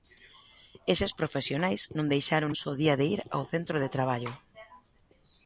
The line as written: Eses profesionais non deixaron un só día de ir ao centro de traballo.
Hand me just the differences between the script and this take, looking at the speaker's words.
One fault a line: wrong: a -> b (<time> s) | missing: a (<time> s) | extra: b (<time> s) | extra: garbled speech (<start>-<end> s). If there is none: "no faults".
no faults